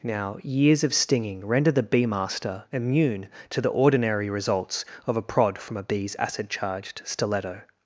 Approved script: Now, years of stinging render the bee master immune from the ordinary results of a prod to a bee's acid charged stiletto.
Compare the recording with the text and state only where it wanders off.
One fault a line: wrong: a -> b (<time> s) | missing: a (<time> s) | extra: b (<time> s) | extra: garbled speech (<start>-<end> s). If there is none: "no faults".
wrong: from -> to (3.5 s)
wrong: to -> from (5.6 s)